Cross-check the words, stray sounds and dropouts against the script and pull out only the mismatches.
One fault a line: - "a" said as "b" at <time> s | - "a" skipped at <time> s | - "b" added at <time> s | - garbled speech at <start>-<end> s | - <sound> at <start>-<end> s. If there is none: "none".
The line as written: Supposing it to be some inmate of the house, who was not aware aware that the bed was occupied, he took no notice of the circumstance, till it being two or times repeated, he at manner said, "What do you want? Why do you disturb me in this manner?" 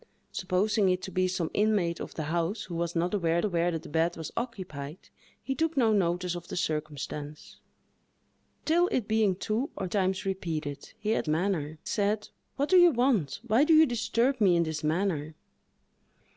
none